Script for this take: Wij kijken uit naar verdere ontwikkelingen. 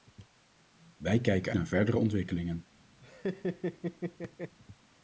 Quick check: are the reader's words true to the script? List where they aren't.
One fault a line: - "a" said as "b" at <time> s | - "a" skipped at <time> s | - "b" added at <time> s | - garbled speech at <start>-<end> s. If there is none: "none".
- "uit" skipped at 1.5 s